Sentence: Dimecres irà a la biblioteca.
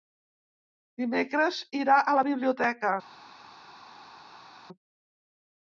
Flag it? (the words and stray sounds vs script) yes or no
no